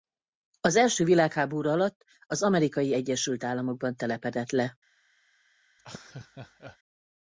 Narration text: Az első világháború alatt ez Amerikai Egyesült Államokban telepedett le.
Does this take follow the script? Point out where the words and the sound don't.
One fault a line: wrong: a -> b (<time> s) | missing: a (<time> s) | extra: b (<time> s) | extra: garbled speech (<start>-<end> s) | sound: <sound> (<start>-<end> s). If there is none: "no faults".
wrong: ez -> az (2.2 s)
sound: laugh (5.8-6.8 s)